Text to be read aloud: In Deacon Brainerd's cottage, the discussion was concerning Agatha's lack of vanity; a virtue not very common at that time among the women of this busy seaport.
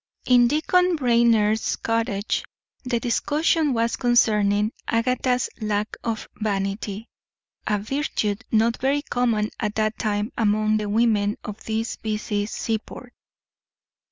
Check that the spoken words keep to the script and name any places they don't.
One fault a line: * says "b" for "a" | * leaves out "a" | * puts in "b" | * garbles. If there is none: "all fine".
all fine